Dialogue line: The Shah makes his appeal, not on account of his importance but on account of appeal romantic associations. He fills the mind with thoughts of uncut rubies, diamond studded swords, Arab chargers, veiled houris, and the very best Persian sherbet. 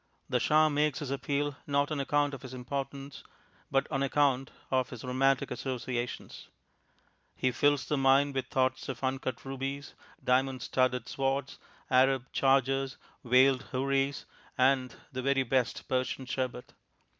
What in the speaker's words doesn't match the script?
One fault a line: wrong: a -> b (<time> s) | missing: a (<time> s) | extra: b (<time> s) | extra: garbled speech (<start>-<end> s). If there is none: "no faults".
wrong: appeal -> his (4.9 s)